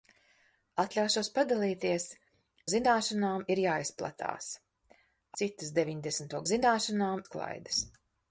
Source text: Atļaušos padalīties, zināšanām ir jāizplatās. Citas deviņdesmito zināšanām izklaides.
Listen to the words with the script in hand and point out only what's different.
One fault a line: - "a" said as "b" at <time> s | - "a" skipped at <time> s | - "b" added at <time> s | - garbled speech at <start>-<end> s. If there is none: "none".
none